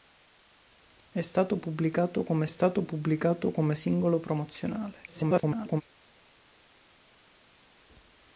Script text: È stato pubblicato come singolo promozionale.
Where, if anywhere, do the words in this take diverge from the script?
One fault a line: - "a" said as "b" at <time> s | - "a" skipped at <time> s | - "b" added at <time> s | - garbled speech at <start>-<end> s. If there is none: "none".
- "stato pubblicato come" added at 2.5 s
- garbled speech at 5.1-5.8 s